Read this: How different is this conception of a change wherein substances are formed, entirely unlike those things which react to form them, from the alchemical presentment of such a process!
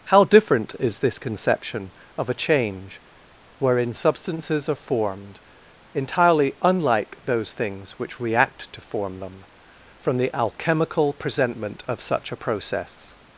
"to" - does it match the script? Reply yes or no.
yes